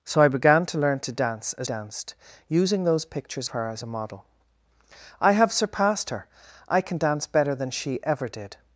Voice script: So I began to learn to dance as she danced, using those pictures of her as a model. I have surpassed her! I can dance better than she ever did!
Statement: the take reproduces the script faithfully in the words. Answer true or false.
false